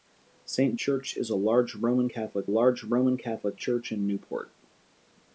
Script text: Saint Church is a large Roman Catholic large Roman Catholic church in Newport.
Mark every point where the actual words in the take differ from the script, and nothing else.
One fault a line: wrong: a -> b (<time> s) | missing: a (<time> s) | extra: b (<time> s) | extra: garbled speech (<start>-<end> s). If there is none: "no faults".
no faults